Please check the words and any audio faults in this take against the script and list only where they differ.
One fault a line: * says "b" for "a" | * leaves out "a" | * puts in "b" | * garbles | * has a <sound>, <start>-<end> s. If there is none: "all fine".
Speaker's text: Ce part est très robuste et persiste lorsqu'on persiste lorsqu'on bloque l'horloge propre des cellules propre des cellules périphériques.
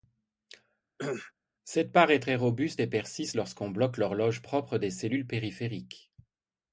* has a cough, 1.0-1.3 s
* says "Cette" for "Ce"
* leaves out "persiste lorsqu'on"
* leaves out "propre des cellules"